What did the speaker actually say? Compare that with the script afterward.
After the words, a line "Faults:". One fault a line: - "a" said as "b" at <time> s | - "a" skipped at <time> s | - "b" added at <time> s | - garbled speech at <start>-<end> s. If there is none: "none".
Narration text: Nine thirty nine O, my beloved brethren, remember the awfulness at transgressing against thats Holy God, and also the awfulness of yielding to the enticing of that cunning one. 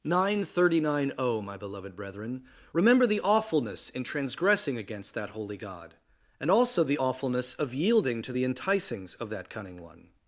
Nine thirty nine O, my beloved brethren, remember the awfulness in transgressing against that Holy God, and also the awfulness of yielding to the enticings of that cunning one.
Faults:
- "at" said as "in" at 3.9 s
- "thats" said as "that" at 5.1 s
- "enticing" said as "enticings" at 8.4 s